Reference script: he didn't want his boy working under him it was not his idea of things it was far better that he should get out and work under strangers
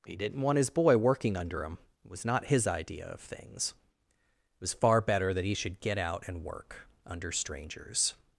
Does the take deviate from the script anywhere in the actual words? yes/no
no